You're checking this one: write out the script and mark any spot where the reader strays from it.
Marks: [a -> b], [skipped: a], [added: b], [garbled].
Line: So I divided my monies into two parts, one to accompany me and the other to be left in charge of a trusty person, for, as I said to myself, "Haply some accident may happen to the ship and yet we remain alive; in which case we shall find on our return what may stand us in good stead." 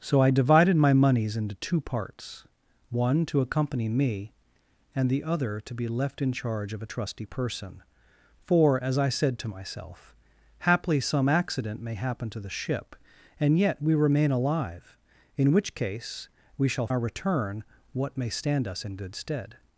So I divided my monies into two parts, one to accompany me and the other to be left in charge of a trusty person, for, as I said to myself, "Haply some accident may happen to the ship and yet we remain alive; in which case we shall [skipped: find on] our return what may stand us in good stead."